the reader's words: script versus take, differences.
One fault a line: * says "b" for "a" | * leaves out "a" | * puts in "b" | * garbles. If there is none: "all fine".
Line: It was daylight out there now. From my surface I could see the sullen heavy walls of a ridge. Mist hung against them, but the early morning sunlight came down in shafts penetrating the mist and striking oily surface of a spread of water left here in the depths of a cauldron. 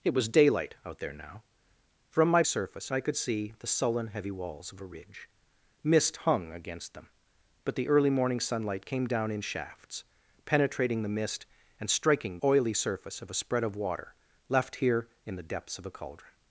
all fine